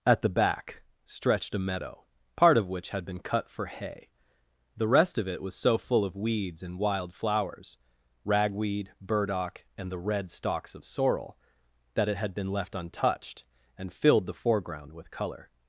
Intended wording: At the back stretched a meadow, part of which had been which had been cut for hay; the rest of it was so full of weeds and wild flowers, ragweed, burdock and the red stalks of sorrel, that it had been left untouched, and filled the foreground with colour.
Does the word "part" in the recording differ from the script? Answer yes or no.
no